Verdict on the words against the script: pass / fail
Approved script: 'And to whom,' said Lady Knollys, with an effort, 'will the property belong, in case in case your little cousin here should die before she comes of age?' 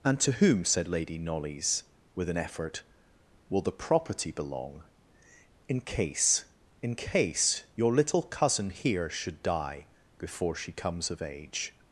pass